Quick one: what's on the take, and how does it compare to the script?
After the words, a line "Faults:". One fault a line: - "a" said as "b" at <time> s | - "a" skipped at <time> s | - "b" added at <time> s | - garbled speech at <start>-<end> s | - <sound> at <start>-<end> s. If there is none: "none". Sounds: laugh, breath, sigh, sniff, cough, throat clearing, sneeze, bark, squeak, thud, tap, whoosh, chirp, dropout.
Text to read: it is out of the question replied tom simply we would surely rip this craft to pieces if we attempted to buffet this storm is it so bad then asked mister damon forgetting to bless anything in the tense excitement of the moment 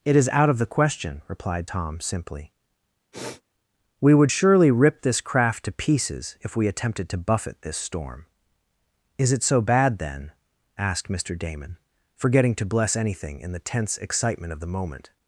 it is out of the question replied tom simply we would surely rip this craft to pieces if we attempted to buffet this storm is it so bad then asked mister damon forgetting to bless anything in the tense excitement of the moment
Faults:
- sniff at 3.1-3.4 s